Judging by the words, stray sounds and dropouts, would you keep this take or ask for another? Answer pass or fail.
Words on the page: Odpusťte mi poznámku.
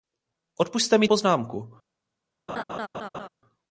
fail